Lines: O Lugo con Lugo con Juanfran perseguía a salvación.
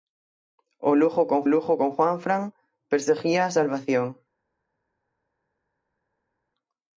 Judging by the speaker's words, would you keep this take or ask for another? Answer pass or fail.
pass